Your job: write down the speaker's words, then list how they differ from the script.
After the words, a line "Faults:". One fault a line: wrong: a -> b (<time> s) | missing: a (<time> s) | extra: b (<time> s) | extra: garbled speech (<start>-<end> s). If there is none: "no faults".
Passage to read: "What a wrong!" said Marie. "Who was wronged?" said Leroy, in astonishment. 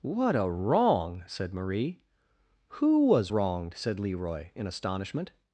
"What a wrong!" said Marie. "Who was wronged?" said Leroy, in astonishment.
Faults:
no faults